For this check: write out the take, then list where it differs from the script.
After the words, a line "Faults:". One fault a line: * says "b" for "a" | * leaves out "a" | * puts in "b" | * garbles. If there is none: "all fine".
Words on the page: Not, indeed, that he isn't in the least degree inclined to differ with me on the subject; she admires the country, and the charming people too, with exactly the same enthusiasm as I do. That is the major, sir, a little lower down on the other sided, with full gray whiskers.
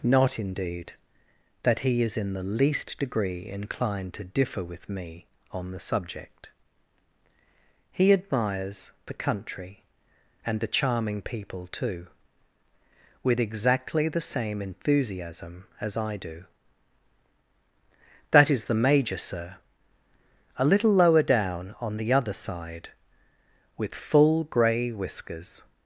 Not, indeed, that he is in the least degree inclined to differ with me on the subject; he admires the country, and the charming people too, with exactly the same enthusiasm as I do. That is the major, sir, a little lower down on the other side, with full gray whiskers.
Faults:
* says "is" for "isn't"
* says "he" for "she"
* says "side" for "sided"